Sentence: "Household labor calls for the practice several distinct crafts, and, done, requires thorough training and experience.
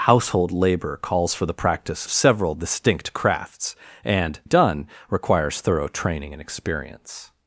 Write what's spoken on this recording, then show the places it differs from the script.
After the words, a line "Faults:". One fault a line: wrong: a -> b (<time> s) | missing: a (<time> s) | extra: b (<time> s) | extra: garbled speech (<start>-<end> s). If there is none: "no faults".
"Household labor calls for the practice several distinct crafts, and, done, requires thorough training and experience.
Faults:
no faults